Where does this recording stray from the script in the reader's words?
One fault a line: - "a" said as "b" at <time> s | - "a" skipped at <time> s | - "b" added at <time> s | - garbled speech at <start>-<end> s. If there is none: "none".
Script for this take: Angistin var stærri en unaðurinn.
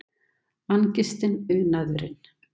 - "var stærri en" skipped at 1.4 s